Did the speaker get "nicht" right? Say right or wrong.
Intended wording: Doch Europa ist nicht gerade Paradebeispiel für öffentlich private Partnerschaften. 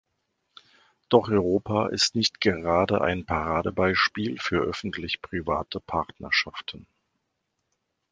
right